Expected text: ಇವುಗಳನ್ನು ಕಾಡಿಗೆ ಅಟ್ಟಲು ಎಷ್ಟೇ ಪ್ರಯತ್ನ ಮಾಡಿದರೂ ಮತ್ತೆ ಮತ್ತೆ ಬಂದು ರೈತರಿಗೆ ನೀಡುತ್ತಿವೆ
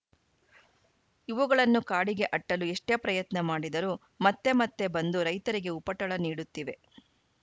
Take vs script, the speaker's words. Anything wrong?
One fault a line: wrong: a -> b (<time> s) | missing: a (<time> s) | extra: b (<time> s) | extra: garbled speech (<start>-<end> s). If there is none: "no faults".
extra: ಉಪಟಳ (5.8 s)